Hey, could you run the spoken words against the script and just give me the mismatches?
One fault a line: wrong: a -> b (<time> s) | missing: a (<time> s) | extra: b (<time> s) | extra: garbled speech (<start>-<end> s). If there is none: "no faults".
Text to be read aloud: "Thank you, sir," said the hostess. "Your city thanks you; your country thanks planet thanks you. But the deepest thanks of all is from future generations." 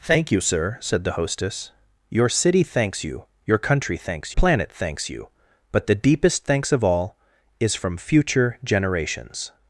no faults